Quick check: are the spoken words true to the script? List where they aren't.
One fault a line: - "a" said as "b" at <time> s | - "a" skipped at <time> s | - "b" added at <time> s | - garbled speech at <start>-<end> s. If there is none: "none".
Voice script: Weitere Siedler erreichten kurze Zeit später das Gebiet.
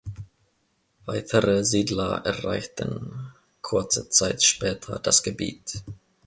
none